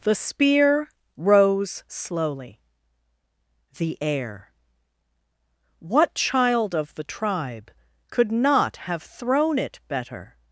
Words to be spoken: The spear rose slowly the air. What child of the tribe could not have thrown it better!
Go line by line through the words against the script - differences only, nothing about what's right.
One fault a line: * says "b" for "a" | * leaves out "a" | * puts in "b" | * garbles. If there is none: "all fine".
all fine